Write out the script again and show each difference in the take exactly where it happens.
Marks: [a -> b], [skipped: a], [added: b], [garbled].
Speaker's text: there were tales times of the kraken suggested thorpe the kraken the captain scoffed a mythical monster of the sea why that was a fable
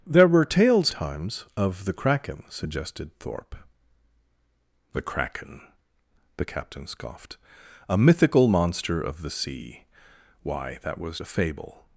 there were tales times of the kraken suggested thorpe the kraken the captain scoffed a mythical monster of the sea why that was a fable